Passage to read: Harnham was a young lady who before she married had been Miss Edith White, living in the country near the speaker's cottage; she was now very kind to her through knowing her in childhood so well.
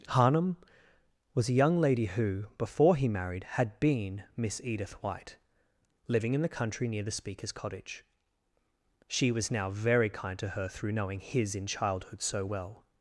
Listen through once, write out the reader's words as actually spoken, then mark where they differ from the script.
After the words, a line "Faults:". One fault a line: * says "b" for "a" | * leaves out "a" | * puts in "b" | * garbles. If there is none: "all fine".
Harnham was a young lady who before he married had been Miss Edith White, living in the country near the speaker's cottage; she was now very kind to her through knowing his in childhood so well.
Faults:
* says "he" for "she"
* says "his" for "her"